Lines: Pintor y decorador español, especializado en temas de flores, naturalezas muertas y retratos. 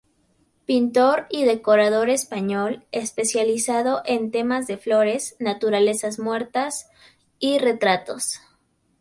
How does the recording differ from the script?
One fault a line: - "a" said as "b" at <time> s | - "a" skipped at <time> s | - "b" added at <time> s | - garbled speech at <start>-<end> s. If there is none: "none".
none